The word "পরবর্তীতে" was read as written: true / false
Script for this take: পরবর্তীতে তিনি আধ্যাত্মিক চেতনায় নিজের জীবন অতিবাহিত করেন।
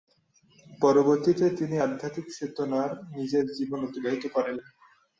true